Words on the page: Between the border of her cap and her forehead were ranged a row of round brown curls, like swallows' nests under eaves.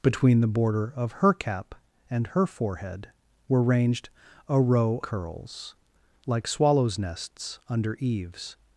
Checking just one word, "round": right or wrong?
wrong